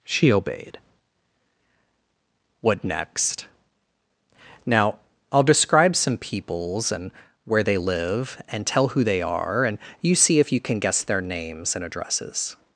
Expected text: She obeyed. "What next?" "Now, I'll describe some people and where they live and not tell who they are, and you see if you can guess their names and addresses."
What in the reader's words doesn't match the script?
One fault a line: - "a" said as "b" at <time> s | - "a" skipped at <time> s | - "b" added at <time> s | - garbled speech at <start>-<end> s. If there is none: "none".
- "people" said as "peoples" at 6.2 s
- "not" skipped at 8.7 s